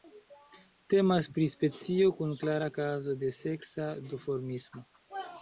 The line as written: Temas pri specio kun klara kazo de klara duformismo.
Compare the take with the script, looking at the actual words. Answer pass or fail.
fail